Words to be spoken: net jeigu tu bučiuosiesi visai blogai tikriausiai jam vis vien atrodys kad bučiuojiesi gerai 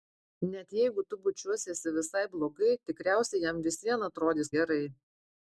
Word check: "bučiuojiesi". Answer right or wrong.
wrong